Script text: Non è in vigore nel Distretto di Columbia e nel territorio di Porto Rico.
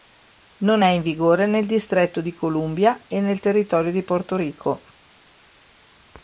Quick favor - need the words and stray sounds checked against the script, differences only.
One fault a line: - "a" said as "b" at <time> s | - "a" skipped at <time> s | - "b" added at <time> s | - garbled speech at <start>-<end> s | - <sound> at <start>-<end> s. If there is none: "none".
none